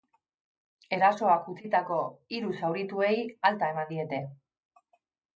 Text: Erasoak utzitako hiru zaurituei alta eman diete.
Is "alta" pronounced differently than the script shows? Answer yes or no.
no